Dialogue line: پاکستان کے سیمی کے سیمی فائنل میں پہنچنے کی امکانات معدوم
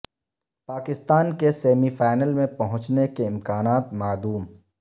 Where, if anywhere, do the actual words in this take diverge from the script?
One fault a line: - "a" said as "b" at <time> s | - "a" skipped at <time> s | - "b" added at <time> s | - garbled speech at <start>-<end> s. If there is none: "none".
- "کے سیمی" skipped at 1.9 s
- "کی" said as "کے" at 3.1 s